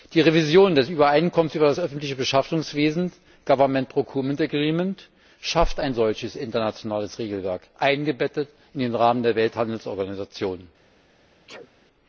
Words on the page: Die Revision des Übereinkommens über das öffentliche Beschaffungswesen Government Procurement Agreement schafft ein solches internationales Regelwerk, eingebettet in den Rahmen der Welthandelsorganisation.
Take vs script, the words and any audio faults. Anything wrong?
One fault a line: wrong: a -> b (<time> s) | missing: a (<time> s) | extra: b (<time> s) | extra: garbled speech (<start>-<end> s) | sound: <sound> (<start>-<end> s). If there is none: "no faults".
sound: sneeze (11.5-11.7 s)